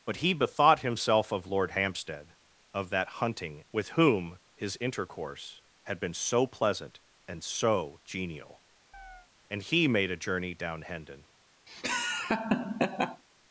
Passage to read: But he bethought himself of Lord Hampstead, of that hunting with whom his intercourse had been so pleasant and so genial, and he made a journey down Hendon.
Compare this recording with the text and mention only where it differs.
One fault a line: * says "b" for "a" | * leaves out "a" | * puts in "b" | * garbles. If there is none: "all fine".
all fine